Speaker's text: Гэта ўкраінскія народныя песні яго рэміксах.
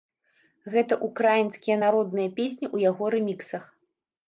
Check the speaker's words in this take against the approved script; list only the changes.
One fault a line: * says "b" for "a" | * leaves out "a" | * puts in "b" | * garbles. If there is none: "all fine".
* puts in "ў"